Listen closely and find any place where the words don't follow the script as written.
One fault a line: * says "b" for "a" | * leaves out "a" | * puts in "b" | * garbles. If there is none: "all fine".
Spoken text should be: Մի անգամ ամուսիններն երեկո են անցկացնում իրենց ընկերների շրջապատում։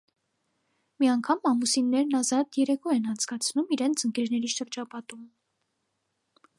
* puts in "ազատ"